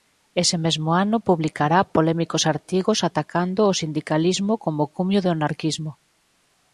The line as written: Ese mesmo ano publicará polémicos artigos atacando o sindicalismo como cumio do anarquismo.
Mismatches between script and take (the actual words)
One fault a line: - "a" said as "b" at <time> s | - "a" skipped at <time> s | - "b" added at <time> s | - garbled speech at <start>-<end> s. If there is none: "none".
none